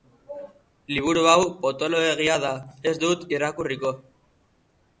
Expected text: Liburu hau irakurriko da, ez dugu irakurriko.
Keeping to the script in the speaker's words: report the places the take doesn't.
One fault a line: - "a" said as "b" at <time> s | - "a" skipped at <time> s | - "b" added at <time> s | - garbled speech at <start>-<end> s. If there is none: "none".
- "irakurriko" said as "potoloegia" at 1.6 s
- "dugu" said as "dut" at 3.0 s